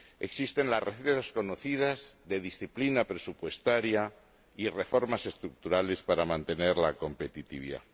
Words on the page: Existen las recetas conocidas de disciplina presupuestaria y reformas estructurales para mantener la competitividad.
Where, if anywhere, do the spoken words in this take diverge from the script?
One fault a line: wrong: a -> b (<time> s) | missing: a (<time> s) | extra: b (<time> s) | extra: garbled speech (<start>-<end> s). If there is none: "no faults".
no faults